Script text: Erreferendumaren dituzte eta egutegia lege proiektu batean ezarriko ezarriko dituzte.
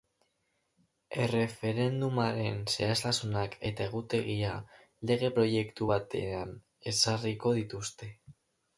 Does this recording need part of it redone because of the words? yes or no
yes